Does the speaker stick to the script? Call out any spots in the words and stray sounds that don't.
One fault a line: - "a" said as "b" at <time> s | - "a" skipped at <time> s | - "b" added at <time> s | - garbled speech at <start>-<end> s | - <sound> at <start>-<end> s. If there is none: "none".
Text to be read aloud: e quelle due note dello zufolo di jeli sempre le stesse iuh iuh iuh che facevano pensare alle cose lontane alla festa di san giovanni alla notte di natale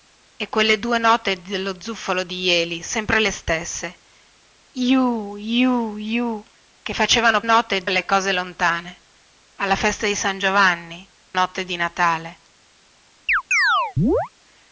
- "pensare" said as "note" at 7.4 s
- "alla" skipped at 11.1 s
- chirp at 13.3-14.3 s